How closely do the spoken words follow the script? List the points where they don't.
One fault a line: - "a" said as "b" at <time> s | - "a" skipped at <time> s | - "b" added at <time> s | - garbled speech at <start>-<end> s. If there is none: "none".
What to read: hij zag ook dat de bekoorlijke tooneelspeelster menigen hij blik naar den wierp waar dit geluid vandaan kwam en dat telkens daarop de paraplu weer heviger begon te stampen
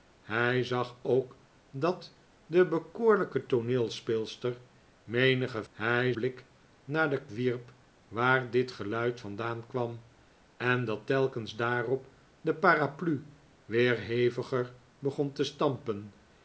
none